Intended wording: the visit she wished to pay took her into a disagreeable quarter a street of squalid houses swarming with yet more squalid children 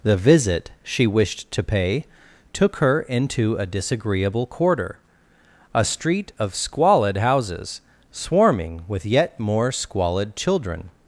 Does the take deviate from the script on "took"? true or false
false